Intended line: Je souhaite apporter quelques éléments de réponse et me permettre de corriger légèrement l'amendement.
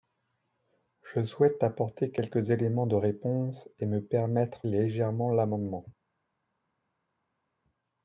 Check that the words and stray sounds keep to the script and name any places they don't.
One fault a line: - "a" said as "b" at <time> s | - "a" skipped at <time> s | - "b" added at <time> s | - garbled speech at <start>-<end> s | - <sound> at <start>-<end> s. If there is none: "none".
- "de corriger" skipped at 4.7 s